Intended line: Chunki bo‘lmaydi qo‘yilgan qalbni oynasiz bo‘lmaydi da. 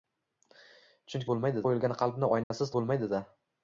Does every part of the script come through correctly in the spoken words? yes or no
yes